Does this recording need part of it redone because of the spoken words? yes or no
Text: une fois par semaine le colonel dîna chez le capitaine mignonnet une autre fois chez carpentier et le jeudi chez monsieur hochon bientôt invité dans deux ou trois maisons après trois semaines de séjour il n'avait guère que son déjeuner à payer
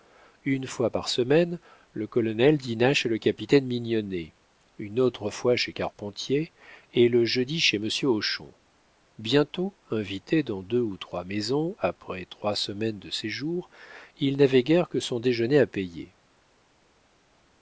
no